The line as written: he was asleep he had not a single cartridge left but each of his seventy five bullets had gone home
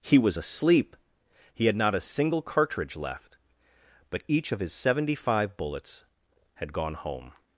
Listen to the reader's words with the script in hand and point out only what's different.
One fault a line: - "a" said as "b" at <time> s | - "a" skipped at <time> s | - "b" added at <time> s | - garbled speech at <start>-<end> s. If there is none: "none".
none